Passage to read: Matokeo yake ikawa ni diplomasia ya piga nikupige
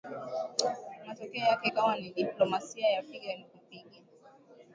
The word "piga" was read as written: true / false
true